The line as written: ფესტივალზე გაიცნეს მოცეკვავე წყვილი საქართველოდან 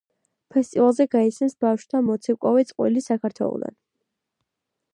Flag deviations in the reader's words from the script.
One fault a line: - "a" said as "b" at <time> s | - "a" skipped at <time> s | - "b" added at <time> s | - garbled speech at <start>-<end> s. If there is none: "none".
- "ბავშვთა" added at 1.6 s